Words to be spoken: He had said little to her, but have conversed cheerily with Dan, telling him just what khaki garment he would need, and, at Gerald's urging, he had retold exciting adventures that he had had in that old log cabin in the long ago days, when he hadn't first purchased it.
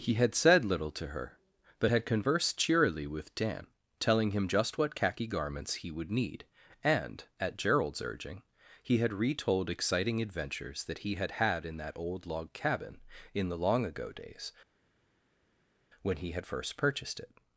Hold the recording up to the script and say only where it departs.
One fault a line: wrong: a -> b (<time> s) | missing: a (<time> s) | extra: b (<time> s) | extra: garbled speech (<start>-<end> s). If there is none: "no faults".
wrong: have -> had (1.9 s)
wrong: garment -> garments (5.3 s)
wrong: hadn't -> had (16.3 s)